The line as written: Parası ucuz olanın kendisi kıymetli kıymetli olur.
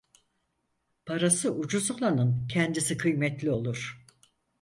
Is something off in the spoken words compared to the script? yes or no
yes